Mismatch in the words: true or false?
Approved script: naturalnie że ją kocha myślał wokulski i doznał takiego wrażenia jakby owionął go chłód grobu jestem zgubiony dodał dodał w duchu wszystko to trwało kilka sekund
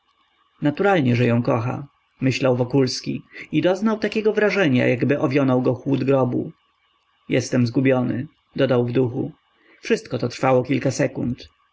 true